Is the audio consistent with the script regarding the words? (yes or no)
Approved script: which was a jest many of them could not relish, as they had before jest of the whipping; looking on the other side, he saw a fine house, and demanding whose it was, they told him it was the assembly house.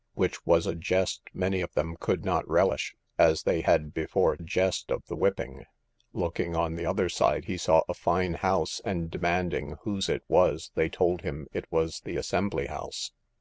yes